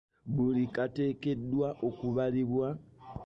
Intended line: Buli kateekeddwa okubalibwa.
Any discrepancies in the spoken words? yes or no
no